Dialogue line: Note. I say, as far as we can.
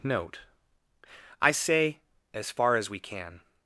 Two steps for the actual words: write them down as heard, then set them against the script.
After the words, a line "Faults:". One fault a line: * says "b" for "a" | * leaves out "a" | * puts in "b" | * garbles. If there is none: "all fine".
Note. I say, as far as we can.
Faults:
all fine